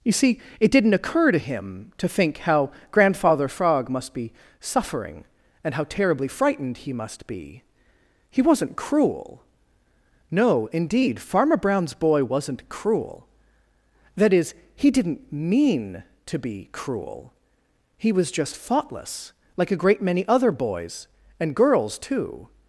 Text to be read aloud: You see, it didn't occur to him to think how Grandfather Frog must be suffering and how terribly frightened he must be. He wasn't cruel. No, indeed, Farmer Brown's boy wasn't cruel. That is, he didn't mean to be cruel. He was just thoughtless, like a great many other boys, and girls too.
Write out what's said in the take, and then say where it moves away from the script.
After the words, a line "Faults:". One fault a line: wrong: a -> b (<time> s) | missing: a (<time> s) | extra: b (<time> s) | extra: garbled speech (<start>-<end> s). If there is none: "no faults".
You see, it didn't occur to him to think how Grandfather Frog must be suffering and how terribly frightened he must be. He wasn't cruel. No, indeed, Farmer Brown's boy wasn't cruel. That is, he didn't mean to be cruel. He was just thoughtless, like a great many other boys, and girls too.
Faults:
no faults